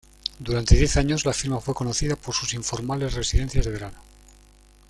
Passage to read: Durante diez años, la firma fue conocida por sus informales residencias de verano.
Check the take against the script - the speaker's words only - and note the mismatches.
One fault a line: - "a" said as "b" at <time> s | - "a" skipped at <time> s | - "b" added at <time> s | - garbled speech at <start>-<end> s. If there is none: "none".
none